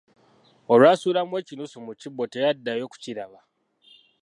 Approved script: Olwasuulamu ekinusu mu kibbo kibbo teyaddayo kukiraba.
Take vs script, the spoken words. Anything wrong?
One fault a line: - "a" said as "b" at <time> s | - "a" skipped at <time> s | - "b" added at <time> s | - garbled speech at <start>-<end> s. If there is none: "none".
- "kibbo" skipped at 2.2 s